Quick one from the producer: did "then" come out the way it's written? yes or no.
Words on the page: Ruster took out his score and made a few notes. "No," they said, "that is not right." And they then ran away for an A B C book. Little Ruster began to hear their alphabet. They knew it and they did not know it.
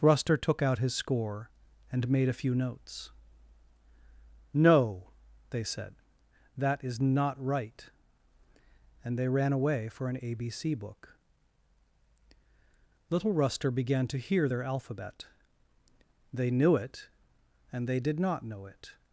no